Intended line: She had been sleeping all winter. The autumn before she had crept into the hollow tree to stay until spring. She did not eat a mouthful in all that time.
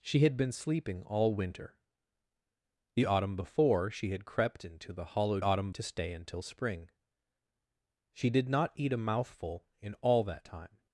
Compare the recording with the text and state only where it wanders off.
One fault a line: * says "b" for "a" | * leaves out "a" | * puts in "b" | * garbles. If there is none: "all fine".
* says "autumn" for "tree"